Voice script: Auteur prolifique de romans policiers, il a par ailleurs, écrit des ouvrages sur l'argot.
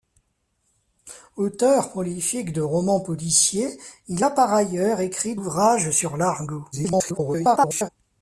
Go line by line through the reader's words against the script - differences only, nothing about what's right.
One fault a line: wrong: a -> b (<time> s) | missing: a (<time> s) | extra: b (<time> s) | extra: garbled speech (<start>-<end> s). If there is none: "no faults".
missing: des (5.4 s)
extra: garbled speech (6.7-7.9 s)